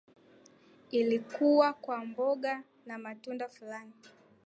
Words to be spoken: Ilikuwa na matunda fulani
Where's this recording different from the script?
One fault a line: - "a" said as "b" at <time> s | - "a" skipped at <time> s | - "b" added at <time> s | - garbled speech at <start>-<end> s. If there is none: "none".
- "kwa mboga" added at 1.7 s